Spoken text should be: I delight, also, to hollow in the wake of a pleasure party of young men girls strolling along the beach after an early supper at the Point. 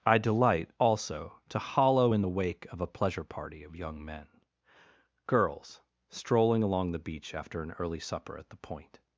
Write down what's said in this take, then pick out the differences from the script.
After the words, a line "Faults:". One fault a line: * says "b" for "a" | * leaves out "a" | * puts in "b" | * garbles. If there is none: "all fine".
I delight, also, to hollow in the wake of a pleasure party of young men girls strolling along the beach after an early supper at the Point.
Faults:
all fine